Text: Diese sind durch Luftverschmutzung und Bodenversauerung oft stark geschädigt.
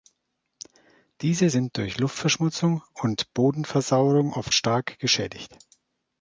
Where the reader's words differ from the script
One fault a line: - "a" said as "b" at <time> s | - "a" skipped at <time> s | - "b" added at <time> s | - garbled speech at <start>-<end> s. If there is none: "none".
none